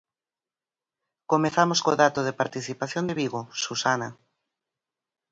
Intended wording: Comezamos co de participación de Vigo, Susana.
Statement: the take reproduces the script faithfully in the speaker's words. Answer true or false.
false